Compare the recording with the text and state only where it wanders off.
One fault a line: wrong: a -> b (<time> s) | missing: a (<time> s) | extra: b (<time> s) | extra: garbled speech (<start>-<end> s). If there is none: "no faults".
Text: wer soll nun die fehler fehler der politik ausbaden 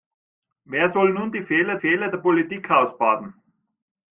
no faults